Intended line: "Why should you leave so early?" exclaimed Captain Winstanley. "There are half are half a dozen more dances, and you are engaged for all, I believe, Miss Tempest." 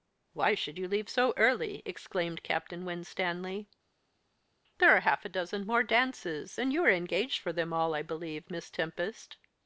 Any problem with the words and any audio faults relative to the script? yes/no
yes